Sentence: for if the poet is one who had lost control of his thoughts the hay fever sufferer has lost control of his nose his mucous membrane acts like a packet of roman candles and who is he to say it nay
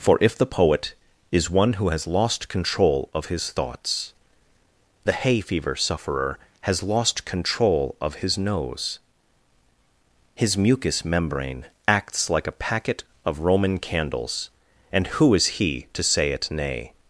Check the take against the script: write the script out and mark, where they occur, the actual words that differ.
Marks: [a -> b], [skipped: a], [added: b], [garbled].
for if the poet is one who [had -> has] lost control of his thoughts the hay fever sufferer has lost control of his nose his mucous membrane acts like a packet of roman candles and who is he to say it nay